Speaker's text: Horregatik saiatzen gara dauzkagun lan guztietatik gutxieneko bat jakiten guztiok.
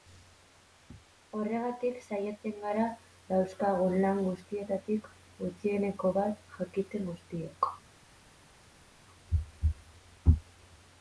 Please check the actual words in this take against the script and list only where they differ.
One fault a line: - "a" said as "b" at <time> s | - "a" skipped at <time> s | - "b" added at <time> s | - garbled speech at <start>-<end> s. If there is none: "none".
none